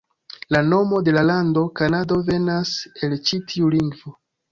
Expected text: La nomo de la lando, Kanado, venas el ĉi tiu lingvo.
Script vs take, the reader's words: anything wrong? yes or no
no